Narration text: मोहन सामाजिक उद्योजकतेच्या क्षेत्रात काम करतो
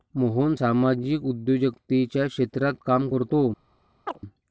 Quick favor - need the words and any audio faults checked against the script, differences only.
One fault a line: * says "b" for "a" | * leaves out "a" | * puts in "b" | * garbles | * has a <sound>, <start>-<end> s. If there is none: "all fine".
* has a chirp, 4.1-4.2 s